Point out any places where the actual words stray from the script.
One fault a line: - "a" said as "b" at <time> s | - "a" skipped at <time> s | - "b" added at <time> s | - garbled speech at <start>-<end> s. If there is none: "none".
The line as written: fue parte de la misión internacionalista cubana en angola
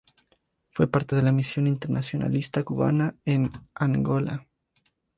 none